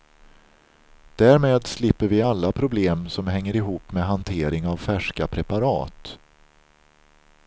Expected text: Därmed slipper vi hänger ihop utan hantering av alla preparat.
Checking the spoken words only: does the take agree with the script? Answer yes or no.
no